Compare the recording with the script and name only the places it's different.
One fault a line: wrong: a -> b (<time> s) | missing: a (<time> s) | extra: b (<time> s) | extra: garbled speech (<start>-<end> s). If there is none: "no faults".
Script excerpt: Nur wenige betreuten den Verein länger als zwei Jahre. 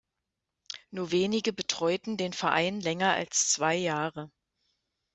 no faults